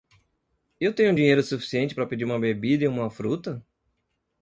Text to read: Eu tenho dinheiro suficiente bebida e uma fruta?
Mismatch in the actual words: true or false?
true